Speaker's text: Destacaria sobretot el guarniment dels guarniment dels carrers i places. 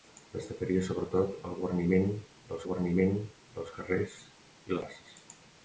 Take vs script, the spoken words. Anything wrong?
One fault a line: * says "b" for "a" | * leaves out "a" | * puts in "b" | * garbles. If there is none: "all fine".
all fine